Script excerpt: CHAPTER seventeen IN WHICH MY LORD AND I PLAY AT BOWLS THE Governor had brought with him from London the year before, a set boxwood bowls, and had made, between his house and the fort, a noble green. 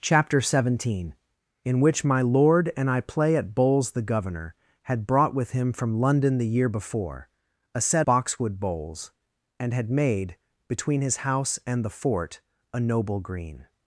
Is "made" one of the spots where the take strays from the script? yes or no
no